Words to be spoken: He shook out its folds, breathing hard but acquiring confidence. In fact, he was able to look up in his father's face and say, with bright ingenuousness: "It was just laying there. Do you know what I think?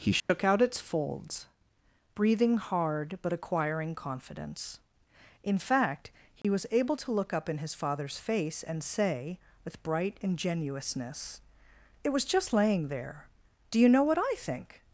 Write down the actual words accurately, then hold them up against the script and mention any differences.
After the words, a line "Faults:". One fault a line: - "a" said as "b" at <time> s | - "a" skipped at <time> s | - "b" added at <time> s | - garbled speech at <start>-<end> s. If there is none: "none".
He shook out its folds, breathing hard but acquiring confidence. In fact, he was able to look up in his father's face and say, with bright ingenuousness: "It was just laying there. Do you know what I think?
Faults:
none